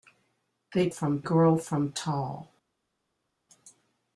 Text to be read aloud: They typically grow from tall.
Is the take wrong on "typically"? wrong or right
wrong